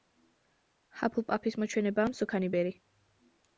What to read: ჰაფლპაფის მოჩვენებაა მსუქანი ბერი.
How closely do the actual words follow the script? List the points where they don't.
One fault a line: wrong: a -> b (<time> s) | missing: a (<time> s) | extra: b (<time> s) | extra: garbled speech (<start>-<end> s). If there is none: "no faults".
no faults